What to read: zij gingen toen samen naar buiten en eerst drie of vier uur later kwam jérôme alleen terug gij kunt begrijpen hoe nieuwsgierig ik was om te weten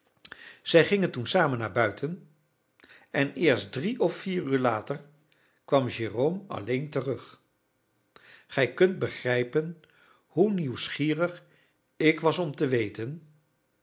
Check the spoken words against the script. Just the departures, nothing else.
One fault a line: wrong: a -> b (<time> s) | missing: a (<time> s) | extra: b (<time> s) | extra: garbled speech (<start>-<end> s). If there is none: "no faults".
no faults